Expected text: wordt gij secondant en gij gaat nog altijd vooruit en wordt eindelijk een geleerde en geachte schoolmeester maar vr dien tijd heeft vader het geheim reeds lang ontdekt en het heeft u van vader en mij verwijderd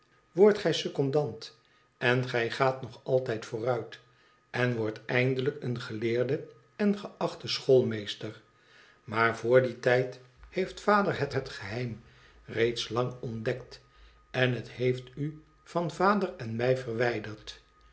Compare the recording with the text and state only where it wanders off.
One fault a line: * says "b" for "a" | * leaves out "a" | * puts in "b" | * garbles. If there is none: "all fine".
* puts in "het"